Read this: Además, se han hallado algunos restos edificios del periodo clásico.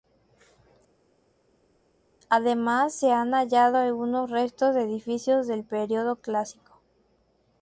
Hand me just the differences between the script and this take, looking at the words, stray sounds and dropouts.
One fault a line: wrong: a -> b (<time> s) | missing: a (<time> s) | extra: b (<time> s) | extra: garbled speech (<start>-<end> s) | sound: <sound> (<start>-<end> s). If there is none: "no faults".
extra: de (4.7 s)